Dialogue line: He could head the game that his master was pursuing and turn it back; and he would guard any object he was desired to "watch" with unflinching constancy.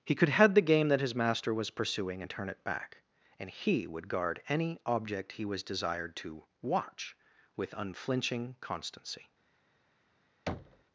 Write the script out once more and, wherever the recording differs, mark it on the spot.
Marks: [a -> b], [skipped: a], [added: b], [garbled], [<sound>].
He could head the game that his master was pursuing and turn it back; and he would guard any object he was desired to "watch" with unflinching constancy. [thud]